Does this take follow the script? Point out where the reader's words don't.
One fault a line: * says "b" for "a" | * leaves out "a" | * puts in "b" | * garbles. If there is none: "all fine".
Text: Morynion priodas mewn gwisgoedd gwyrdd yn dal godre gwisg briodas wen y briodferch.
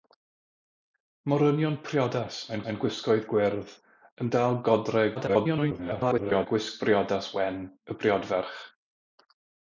* puts in "mewn"
* garbles